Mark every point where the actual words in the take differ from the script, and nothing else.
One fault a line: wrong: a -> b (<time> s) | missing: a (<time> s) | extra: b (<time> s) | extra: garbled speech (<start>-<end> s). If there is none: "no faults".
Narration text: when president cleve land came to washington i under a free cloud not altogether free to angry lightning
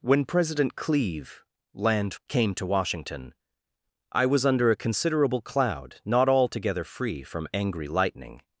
extra: was (4.2 s)
wrong: free -> considerable (4.8 s)
wrong: to -> from (7.2 s)